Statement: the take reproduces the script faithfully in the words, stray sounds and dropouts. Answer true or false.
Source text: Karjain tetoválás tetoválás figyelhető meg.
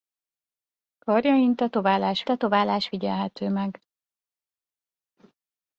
true